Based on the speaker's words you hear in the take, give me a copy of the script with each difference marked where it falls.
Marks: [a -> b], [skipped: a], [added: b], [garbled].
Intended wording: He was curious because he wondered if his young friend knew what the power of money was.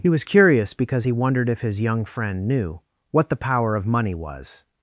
He was curious because he wondered if his young friend knew what the power of money was.